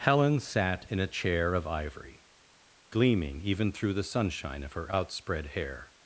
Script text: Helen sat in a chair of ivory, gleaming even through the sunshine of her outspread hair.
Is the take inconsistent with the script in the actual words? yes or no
no